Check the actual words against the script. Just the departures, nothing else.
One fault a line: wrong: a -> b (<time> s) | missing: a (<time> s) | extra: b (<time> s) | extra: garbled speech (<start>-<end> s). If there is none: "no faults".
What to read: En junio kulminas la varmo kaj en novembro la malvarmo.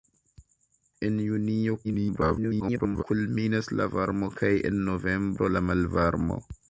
extra: garbled speech (1.8-3.0 s)